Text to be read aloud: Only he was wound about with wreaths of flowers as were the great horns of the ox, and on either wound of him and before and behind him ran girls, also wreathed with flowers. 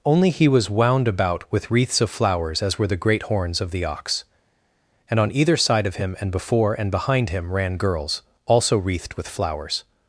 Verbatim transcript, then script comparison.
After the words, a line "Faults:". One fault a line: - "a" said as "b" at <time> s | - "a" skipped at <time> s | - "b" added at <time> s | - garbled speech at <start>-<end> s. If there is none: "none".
Only he was wound about with wreaths of flowers as were the great horns of the ox, and on either side of him and before and behind him ran girls, also wreathed with flowers.
Faults:
- "wound" said as "side" at 5.6 s